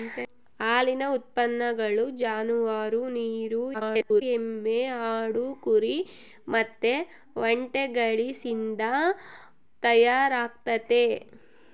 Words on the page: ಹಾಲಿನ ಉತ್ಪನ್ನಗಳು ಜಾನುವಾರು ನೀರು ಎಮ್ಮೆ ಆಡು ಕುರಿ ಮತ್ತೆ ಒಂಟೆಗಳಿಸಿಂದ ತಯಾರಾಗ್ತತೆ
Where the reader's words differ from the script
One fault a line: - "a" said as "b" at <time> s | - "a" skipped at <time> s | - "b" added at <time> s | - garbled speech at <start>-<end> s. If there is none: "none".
- garbled speech at 3.7-4.2 s